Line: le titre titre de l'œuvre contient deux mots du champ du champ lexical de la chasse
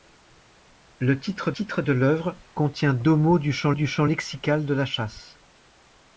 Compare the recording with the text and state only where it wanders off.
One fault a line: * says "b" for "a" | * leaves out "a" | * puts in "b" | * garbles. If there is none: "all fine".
all fine